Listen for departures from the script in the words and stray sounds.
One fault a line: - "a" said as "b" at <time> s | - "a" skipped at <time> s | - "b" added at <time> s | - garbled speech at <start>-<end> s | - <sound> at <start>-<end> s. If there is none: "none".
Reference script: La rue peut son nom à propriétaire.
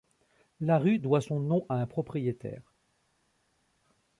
- "peut" said as "doit" at 1.0 s
- "un" added at 1.7 s